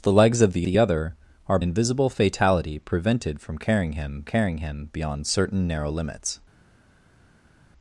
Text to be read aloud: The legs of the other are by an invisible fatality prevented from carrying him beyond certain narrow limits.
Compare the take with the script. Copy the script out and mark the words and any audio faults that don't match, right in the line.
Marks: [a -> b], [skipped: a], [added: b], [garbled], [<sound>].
The legs of the [added: the] other are [skipped: by an] invisible fatality prevented from carrying him [added: carrying him] beyond certain narrow limits.